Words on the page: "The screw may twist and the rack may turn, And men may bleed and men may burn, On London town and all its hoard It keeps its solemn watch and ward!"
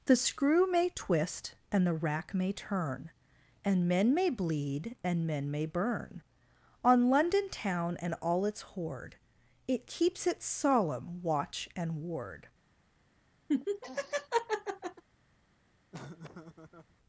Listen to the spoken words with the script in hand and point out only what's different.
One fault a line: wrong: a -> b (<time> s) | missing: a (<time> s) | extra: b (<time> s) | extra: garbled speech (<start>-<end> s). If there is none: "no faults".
no faults